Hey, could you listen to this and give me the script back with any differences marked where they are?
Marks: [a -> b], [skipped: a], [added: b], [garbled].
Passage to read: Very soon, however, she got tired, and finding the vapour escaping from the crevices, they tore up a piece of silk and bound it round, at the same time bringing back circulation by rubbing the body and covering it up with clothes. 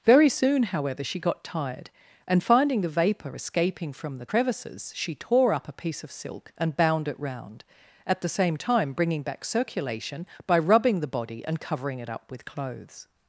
Very soon, however, she got tired, and finding the vapour escaping from the crevices, [they -> she] tore up a piece of silk and bound it round, at the same time bringing back circulation by rubbing the body and covering it up with clothes.